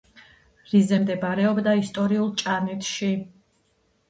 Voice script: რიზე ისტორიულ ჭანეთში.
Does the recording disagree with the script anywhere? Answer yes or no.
yes